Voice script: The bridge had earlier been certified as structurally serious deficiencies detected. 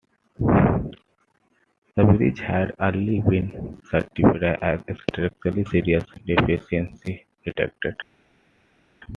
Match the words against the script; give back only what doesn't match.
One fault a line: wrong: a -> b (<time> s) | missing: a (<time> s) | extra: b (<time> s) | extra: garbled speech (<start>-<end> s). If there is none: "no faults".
no faults